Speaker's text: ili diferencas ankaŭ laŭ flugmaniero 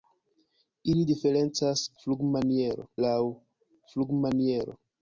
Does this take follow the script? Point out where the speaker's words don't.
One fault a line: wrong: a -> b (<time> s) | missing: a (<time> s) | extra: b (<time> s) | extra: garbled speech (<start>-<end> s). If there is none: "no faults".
wrong: ankaŭ -> flugmaniero (2.0 s)